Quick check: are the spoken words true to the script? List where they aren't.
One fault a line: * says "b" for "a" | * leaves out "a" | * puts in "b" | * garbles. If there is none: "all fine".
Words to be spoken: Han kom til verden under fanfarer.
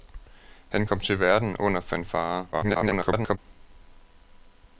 * garbles